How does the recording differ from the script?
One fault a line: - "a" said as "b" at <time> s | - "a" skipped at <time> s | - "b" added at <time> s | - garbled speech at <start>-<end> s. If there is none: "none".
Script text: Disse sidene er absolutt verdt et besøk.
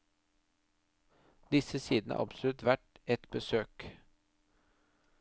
none